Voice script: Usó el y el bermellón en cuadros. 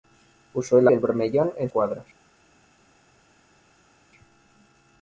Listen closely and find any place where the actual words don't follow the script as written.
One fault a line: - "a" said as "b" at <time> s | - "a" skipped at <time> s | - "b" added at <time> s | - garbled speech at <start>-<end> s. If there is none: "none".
none